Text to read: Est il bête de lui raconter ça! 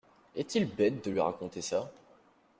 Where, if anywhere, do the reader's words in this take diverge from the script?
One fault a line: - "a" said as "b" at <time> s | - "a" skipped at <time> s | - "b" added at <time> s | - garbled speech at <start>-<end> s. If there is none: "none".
none